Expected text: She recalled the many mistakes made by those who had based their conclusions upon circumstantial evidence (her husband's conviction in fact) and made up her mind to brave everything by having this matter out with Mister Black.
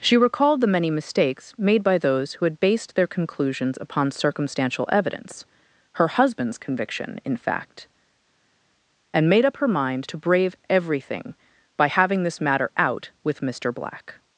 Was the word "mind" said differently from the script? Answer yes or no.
no